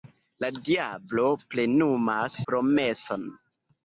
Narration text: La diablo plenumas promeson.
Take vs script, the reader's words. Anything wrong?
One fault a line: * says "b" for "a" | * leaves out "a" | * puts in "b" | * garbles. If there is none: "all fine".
all fine